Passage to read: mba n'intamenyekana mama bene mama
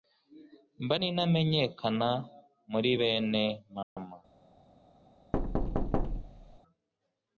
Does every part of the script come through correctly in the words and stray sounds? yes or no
no